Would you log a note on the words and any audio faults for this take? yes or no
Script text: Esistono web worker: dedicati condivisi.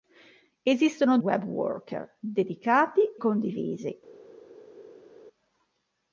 no